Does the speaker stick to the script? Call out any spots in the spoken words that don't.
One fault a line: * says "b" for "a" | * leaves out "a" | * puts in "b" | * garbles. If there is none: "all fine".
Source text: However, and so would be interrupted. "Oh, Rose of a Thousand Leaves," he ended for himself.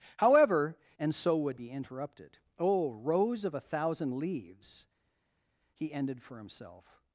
all fine